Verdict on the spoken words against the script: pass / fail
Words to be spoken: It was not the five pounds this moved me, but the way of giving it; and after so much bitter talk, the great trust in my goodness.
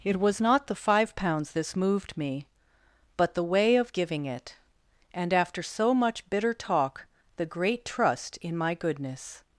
pass